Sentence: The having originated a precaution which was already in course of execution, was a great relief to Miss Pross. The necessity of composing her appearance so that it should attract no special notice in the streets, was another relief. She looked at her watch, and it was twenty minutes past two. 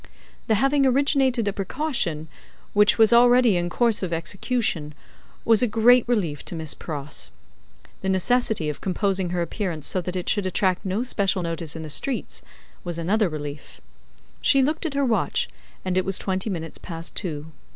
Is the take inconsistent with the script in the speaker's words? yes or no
no